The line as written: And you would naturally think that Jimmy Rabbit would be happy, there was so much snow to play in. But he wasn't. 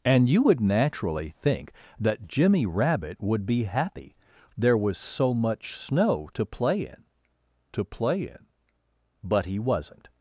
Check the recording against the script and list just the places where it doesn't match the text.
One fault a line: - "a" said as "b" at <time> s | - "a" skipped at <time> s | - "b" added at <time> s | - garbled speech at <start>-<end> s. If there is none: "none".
- "to play in" added at 7.7 s